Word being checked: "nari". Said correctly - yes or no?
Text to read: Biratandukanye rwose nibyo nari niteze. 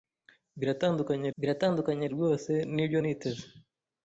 no